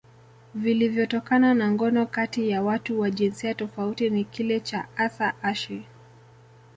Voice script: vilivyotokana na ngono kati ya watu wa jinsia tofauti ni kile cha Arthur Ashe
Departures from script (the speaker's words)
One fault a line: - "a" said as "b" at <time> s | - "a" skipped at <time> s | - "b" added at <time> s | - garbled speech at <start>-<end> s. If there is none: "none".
none